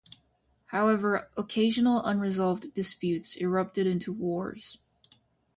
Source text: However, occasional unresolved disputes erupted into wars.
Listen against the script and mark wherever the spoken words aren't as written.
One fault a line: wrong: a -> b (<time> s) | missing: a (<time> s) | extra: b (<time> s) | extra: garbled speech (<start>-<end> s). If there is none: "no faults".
no faults